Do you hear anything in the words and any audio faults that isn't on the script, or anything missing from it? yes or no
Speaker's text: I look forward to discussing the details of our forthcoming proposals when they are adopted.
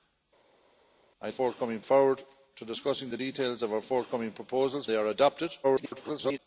yes